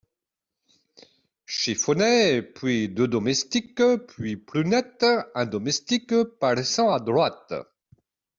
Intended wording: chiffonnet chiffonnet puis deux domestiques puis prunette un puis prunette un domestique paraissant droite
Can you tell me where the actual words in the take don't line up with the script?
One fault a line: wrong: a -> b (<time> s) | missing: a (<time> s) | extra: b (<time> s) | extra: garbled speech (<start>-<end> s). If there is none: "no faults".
missing: chiffonnet (2.4 s)
missing: puis prunette un (5.4 s)
extra: à (6.9 s)